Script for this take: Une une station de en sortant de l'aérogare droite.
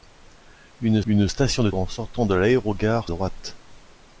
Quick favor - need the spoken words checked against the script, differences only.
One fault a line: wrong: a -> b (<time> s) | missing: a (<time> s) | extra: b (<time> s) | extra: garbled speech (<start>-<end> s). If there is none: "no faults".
no faults